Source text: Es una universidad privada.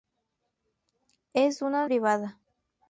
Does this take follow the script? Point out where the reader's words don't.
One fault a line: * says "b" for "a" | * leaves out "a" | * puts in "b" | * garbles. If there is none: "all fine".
* leaves out "universidad"